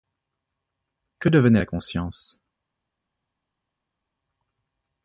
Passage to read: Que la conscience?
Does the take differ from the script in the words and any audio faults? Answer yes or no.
yes